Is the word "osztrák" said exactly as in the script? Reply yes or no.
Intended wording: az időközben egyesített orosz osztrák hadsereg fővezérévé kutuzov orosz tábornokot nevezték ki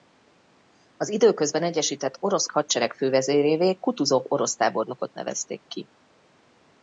no